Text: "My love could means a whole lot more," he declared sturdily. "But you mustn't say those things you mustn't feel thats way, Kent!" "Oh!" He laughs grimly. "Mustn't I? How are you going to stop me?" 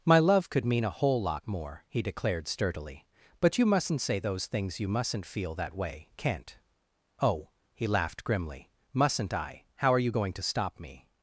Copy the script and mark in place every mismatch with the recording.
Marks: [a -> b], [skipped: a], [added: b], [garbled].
"My love could [means -> mean] a whole lot more," he declared sturdily. "But you mustn't say those things you mustn't feel [thats -> that] way, Kent!" "Oh!" He [laughs -> laughed] grimly. "Mustn't I? How are you going to stop me?"